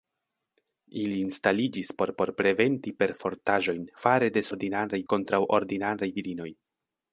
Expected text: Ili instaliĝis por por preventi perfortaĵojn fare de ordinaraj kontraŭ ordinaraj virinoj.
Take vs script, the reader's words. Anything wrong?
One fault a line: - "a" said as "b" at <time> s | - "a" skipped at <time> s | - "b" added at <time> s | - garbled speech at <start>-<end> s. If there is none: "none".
none